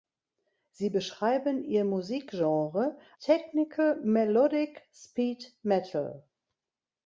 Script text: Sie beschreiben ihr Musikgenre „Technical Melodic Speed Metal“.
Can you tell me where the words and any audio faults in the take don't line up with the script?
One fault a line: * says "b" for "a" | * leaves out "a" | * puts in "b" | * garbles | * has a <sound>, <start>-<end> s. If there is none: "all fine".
all fine